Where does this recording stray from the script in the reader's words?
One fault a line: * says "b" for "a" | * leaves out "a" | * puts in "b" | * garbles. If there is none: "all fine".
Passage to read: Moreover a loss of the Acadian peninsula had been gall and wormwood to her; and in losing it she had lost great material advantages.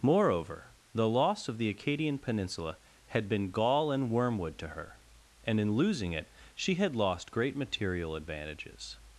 * says "the" for "a"